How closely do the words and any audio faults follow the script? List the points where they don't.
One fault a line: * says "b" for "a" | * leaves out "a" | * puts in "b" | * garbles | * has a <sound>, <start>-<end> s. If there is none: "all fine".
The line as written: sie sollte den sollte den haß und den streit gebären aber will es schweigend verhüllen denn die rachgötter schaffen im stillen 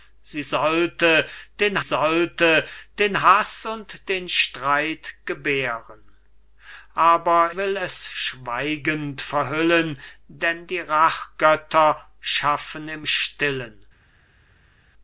all fine